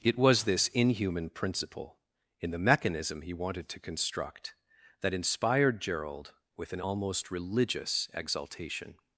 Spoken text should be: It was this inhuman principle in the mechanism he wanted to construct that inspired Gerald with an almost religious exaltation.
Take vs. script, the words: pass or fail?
pass